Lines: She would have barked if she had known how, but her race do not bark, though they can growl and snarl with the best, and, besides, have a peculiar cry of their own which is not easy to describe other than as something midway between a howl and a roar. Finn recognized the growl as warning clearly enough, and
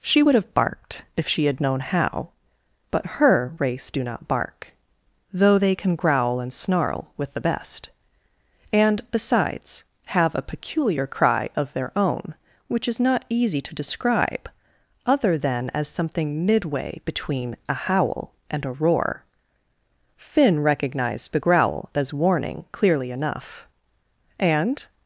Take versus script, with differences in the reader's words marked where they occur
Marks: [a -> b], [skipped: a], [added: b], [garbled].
She would have barked if she had known how, but her race do not bark, though they can growl and snarl with the best, and, besides, have a peculiar cry of their own which is not easy to describe other than as something midway between a howl and a roar. Finn recognized the growl as warning clearly enough, and